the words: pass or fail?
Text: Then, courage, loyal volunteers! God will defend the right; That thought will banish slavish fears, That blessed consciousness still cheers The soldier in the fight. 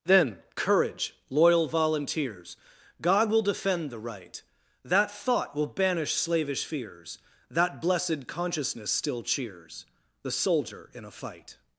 fail